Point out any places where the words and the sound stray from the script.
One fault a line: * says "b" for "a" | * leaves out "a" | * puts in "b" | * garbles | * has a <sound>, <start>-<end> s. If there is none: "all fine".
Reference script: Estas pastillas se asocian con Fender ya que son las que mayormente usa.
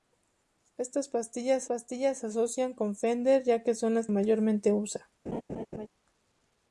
* puts in "pastillas"
* leaves out "que"
* has a laugh, 5.3-5.9 s